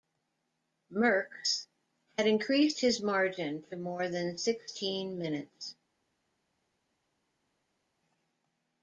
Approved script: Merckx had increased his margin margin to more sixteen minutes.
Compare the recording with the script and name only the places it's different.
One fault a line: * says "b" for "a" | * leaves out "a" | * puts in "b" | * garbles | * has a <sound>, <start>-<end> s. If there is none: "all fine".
* leaves out "margin"
* puts in "than"